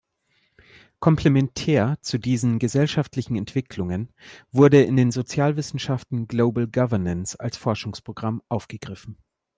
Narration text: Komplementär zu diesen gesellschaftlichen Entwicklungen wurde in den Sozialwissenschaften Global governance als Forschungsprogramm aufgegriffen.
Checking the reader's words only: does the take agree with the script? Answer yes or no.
yes